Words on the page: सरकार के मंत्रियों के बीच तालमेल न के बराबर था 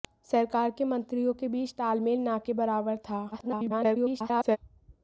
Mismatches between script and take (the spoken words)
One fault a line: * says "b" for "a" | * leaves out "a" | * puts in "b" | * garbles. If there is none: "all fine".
* garbles